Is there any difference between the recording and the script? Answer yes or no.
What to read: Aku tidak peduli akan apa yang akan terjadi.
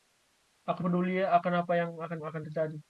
yes